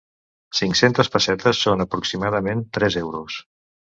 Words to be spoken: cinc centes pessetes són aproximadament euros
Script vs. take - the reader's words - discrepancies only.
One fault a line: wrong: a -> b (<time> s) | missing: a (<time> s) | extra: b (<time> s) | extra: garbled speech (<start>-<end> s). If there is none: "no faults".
extra: tres (2.8 s)